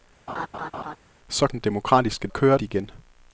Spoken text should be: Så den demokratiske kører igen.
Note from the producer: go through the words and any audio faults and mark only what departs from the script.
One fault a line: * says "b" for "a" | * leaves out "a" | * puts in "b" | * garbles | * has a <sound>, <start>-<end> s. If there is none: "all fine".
* has a laugh, 0.3-1.0 s